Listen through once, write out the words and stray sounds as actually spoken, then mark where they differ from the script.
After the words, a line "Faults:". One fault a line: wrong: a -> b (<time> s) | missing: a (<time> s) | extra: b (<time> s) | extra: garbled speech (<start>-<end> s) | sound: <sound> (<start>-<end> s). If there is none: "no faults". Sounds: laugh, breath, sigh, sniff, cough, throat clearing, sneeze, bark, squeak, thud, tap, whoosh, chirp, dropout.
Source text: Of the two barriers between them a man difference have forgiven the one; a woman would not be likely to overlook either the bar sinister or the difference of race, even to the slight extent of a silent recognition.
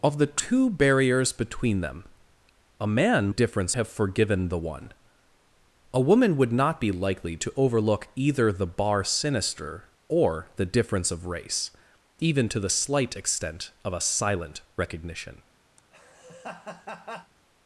Of the two barriers between them a man difference have forgiven the one; a woman would not be likely to overlook either the bar sinister or the difference of race, even to the slight extent of a silent recognition.
Faults:
sound: laugh (15.8-17.3 s)